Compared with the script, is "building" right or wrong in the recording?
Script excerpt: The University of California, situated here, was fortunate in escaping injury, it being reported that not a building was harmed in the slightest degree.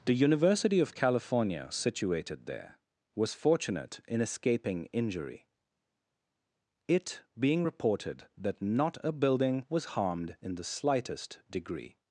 right